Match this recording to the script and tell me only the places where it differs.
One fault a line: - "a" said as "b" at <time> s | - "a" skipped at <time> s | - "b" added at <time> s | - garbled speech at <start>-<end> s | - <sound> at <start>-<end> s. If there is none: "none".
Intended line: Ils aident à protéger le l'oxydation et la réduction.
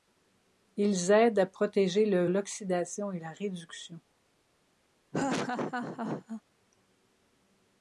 - laugh at 5.1-6.4 s